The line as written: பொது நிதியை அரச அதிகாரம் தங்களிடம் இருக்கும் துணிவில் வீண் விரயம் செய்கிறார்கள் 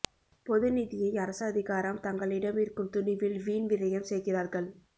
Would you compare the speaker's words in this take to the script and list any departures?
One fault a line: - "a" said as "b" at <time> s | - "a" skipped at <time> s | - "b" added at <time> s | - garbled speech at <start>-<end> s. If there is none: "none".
none